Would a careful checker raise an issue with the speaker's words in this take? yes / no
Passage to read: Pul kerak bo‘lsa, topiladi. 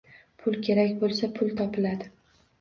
yes